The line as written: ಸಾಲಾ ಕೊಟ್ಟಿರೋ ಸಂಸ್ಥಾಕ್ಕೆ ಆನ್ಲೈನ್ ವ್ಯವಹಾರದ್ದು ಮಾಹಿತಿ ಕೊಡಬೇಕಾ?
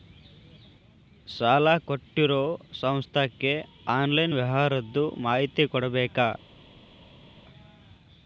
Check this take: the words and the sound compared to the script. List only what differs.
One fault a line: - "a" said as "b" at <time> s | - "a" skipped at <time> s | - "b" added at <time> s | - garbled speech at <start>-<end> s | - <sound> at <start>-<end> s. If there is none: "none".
none